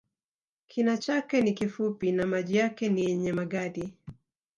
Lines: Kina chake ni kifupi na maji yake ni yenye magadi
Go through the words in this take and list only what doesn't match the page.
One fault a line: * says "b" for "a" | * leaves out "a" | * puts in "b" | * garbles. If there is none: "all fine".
all fine